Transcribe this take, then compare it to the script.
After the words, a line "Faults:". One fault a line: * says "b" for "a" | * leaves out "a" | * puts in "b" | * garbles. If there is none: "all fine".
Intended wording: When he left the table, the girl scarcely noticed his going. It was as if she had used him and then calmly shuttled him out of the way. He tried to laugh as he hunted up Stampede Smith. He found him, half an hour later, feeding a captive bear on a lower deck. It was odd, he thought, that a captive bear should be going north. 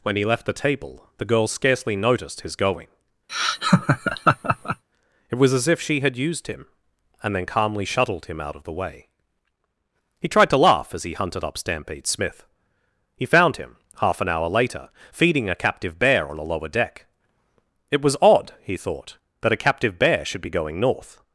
When he left the table, the girl scarcely noticed his going. It was as if she had used him and then calmly shuttled him out of the way. He tried to laugh as he hunted up Stampede Smith. He found him, half an hour later, feeding a captive bear on a lower deck. It was odd, he thought, that a captive bear should be going north.
Faults:
all fine